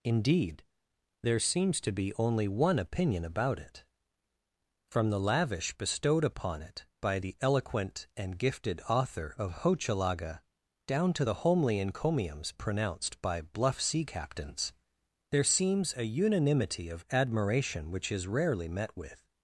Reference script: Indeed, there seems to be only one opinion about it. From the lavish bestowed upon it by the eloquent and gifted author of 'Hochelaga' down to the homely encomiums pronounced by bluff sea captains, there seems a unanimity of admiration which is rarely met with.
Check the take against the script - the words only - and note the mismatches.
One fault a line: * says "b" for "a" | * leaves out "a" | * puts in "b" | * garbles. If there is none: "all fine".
all fine